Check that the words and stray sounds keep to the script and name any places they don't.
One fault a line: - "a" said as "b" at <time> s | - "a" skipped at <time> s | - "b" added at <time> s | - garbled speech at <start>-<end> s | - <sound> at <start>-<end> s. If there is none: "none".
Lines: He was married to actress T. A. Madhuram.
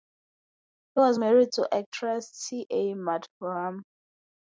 none